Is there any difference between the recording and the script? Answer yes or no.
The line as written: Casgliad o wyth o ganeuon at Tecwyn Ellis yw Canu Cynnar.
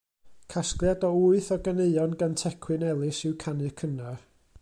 yes